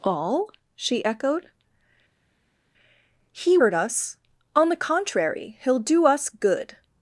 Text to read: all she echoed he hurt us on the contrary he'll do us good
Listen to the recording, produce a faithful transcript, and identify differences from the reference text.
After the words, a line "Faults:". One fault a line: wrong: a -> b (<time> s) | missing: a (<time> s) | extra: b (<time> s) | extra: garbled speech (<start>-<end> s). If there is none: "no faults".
all she echoed he hurt us on the contrary he'll do us good
Faults:
no faults